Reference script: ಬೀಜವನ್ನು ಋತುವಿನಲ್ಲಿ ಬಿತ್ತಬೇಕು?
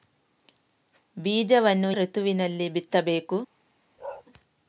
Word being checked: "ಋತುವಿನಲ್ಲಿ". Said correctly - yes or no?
yes